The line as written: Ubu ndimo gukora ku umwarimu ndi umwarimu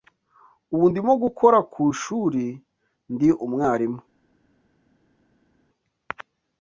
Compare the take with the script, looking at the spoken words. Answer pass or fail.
fail